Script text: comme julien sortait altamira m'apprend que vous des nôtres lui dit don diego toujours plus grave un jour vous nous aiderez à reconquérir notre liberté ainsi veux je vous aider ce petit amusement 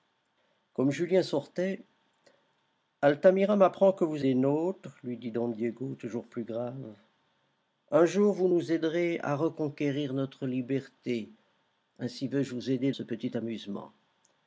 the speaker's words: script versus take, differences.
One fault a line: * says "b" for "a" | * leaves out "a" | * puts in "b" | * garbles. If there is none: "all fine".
all fine